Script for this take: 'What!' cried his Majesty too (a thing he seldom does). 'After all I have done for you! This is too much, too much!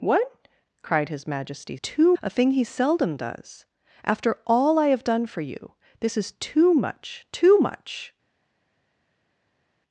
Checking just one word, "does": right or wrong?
right